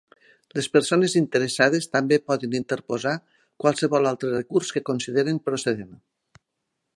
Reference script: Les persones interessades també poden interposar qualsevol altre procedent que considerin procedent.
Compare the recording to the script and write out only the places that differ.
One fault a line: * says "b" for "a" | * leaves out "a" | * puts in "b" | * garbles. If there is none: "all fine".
* says "recurs" for "procedent"